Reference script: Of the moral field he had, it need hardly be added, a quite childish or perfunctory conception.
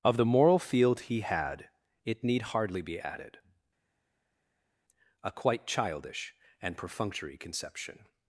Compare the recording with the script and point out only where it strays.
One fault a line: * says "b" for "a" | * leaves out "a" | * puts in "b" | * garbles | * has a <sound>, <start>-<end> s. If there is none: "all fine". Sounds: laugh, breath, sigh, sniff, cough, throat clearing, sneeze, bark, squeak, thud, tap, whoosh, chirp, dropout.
* says "and" for "or"